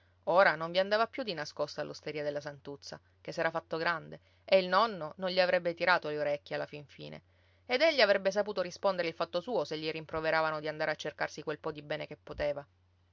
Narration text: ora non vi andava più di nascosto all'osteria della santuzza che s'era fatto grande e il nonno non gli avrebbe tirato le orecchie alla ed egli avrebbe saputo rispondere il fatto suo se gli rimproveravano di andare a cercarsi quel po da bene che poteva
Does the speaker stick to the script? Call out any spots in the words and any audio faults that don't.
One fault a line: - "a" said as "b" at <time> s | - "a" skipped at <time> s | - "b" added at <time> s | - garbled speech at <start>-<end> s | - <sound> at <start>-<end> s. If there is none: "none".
- "fin fine" added at 6.7 s
- "da" said as "di" at 11.7 s